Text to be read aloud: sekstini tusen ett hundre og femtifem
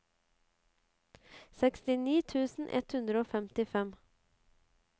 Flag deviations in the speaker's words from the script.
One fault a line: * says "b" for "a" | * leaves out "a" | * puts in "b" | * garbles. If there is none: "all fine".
all fine